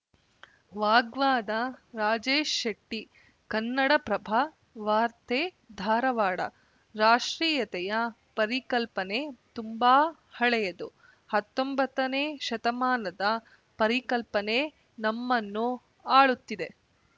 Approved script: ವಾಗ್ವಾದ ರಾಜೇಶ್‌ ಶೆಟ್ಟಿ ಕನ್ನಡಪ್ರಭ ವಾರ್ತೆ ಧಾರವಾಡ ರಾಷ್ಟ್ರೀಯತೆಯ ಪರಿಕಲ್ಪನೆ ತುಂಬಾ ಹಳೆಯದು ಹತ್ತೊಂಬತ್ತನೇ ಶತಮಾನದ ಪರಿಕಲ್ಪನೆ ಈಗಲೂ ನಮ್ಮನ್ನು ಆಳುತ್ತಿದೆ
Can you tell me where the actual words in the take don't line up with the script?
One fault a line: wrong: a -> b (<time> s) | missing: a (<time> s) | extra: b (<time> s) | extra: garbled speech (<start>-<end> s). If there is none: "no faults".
missing: ಈಗಲೂ (14.6 s)